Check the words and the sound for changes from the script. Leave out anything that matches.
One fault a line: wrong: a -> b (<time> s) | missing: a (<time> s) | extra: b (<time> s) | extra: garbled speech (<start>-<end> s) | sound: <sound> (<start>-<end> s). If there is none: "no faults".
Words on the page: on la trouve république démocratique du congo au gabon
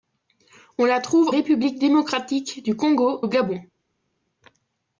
no faults